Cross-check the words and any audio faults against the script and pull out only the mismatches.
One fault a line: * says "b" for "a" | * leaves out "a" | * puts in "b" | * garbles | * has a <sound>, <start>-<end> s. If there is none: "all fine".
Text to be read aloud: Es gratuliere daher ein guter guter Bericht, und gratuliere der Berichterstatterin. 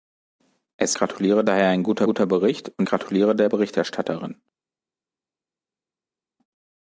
all fine